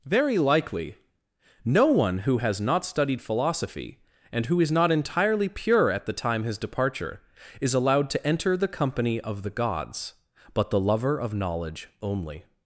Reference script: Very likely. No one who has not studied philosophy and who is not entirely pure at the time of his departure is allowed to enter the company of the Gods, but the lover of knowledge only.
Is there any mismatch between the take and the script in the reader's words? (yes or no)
yes